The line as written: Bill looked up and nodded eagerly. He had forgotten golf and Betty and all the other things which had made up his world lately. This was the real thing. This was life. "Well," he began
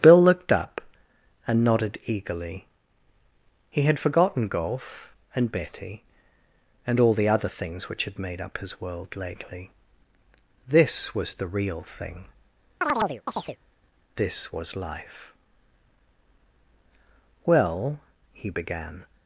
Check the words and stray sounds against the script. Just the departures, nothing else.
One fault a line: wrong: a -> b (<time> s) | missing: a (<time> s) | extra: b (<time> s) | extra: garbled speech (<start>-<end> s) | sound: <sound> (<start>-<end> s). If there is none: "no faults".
sound: chirp (12.8-13.6 s)